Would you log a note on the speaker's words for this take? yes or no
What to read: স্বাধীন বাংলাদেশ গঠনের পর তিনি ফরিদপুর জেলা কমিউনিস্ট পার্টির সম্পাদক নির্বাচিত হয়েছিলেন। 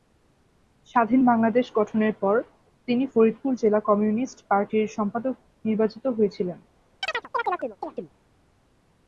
no